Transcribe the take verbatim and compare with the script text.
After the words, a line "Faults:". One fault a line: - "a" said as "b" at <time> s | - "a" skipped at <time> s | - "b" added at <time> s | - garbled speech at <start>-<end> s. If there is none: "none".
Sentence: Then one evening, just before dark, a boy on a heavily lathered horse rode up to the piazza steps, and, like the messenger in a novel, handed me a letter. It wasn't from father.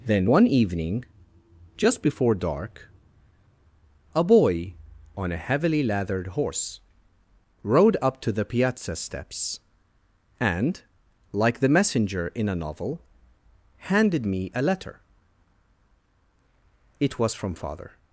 Then one evening, just before dark, a boy on a heavily lathered horse rode up to the piazza steps, and, like the messenger in a novel, handed me a letter. It was from father.
Faults:
- "wasn't" said as "was" at 17.2 s